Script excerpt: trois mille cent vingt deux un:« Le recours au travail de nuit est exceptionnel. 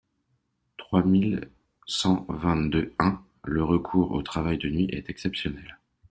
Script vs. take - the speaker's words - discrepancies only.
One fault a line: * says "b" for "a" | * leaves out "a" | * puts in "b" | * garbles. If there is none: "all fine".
all fine